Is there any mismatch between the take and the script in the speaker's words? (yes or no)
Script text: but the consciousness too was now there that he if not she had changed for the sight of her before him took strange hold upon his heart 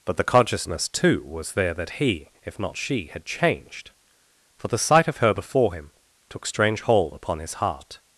yes